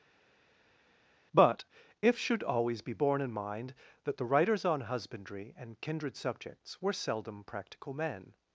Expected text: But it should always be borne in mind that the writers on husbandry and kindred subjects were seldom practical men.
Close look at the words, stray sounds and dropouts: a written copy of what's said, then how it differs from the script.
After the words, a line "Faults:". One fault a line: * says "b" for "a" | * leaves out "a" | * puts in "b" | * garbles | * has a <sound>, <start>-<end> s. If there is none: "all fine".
But if should always be borne in mind that the writers on husbandry and kindred subjects were seldom practical men.
Faults:
* says "if" for "it"